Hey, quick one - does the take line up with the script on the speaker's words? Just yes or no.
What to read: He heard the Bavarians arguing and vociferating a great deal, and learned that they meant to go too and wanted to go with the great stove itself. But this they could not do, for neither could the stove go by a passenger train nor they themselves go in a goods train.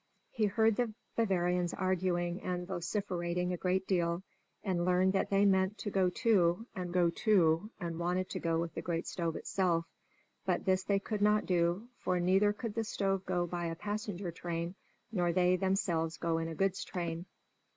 no